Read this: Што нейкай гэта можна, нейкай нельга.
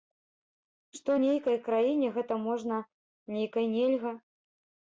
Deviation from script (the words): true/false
true